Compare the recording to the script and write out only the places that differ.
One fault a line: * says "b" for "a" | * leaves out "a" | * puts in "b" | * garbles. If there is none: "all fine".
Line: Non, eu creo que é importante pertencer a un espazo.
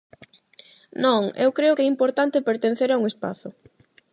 all fine